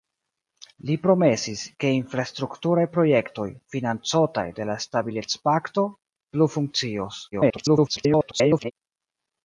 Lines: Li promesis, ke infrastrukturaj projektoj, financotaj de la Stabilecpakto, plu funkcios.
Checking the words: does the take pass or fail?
fail